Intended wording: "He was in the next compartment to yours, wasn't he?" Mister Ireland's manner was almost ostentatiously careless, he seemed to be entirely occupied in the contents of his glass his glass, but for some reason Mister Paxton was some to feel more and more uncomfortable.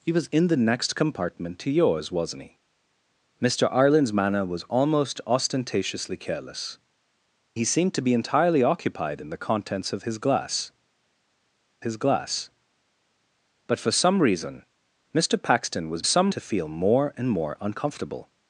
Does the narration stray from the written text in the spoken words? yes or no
no